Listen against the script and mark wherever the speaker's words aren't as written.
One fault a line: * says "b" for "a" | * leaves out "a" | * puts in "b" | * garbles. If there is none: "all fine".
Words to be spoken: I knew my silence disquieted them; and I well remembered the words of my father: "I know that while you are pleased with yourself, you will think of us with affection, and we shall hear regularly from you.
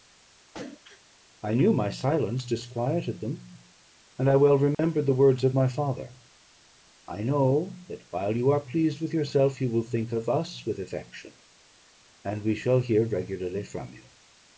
all fine